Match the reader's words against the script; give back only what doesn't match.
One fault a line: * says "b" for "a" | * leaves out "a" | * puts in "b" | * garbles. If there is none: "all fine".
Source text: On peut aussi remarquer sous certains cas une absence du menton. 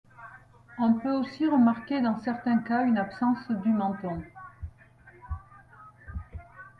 * says "dans" for "sous"